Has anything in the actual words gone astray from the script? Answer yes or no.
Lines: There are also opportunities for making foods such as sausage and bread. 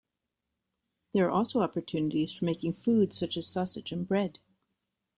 no